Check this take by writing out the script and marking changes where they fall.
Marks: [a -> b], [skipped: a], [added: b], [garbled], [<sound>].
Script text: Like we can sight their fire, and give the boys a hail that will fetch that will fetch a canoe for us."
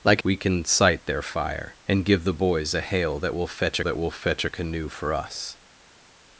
Like we can sight their fire, and give the boys a hail that will fetch that will fetch a canoe for us."